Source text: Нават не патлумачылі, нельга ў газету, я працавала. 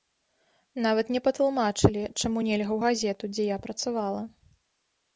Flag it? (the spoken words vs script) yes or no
yes